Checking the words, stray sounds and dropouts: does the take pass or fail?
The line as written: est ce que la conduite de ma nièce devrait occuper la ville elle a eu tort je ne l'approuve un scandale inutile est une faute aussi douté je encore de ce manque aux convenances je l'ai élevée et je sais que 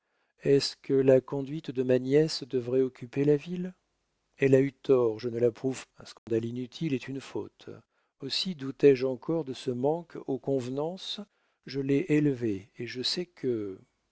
fail